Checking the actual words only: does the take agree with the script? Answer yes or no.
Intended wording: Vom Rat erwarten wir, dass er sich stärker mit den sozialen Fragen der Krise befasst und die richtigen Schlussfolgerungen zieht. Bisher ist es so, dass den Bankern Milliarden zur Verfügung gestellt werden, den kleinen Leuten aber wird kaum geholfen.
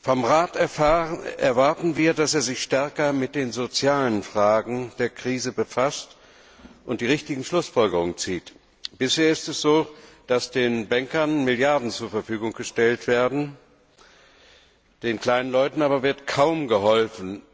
yes